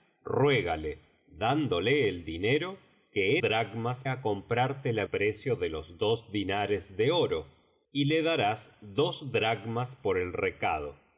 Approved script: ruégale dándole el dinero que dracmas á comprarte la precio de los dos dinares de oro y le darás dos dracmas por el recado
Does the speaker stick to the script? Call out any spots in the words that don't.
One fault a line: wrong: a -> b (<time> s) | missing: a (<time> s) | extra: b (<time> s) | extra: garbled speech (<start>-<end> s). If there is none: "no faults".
no faults